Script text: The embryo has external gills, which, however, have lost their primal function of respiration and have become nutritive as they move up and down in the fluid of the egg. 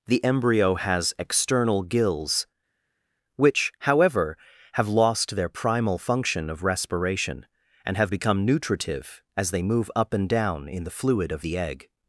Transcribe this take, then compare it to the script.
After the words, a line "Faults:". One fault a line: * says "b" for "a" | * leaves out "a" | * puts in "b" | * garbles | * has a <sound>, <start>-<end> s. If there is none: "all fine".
The embryo has external gills, which, however, have lost their primal function of respiration and have become nutritive as they move up and down in the fluid of the egg.
Faults:
all fine